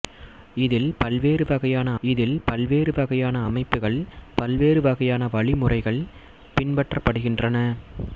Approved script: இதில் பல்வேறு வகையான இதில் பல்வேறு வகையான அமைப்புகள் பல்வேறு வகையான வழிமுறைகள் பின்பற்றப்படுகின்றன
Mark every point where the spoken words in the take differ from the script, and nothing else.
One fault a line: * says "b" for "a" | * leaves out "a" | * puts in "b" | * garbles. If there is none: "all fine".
all fine